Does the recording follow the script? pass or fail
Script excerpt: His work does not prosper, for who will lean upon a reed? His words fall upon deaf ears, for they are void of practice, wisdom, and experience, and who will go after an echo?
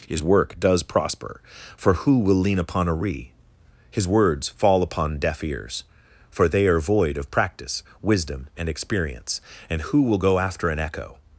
fail